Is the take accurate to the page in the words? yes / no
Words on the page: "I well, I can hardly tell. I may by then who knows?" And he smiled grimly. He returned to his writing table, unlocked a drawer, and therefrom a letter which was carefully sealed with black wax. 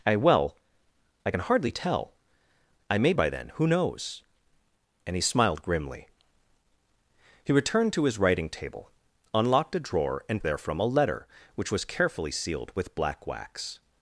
yes